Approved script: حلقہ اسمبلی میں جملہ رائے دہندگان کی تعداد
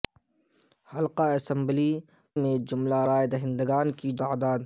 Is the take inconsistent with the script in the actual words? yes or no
no